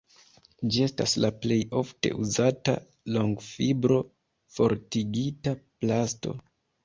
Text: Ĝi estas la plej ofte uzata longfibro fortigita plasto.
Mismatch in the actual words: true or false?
false